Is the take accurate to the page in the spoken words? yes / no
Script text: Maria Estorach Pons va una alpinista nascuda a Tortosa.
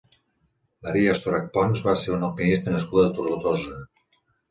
no